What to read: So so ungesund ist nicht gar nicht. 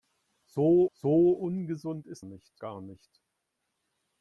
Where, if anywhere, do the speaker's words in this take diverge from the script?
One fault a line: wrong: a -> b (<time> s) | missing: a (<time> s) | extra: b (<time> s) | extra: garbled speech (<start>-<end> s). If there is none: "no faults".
no faults